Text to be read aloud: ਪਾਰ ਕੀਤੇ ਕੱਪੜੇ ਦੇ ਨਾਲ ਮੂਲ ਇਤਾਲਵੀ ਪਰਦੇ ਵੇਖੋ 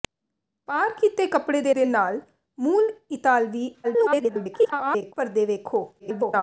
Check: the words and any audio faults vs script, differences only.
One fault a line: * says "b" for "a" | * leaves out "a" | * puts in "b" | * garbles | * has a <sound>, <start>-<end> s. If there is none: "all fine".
* puts in "ਦੇ"
* garbles
* garbles